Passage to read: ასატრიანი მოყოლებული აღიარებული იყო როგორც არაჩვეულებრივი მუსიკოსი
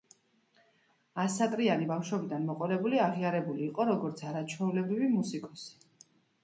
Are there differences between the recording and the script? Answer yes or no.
yes